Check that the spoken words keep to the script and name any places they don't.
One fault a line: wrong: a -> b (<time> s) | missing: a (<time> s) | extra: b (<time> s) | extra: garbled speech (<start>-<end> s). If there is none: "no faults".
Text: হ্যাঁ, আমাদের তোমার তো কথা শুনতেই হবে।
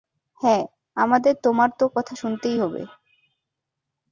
no faults